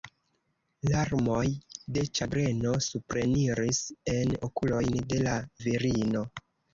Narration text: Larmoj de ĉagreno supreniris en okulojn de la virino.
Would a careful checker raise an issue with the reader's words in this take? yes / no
no